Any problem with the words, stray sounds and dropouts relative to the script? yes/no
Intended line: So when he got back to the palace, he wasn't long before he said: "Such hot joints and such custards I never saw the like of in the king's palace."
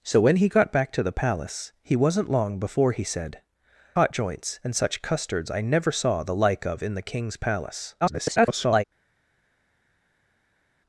yes